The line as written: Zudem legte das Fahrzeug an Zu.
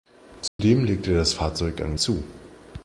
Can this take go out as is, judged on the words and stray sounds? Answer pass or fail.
fail